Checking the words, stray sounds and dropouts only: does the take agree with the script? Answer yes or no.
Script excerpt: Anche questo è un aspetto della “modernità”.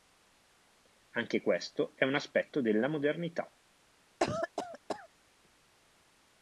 no